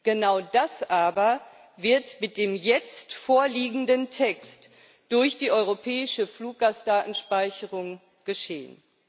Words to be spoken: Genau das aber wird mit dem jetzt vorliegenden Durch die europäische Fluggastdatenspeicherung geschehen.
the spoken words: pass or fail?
fail